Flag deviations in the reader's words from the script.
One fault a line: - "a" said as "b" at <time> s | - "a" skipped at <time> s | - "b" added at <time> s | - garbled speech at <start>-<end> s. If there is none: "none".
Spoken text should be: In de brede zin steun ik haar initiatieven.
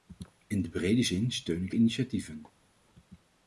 - "haar" skipped at 1.7 s